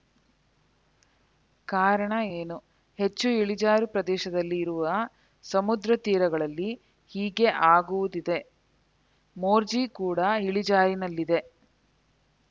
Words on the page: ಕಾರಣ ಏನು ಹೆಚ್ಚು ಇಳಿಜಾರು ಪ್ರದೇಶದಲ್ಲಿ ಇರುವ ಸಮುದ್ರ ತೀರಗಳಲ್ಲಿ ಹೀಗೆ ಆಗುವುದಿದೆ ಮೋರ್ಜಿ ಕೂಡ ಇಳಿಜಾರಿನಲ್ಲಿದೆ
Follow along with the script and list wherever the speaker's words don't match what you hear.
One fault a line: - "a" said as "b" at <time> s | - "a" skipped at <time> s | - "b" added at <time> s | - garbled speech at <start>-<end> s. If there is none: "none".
none